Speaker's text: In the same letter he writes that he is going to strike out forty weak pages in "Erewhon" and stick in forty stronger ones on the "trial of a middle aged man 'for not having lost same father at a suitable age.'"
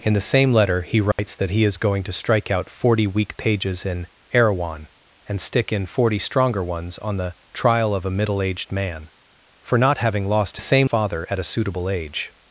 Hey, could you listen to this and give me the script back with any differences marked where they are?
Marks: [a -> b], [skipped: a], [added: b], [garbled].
In the same letter he writes that he is going to strike out forty weak pages in "Erewhon" and stick in forty stronger ones on the "trial of a middle aged man 'for not having lost same father at a suitable age.'"